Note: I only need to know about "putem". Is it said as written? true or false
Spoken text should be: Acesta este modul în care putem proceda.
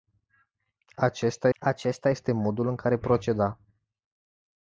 false